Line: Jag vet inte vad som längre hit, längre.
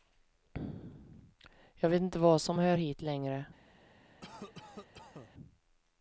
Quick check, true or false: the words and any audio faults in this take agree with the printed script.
false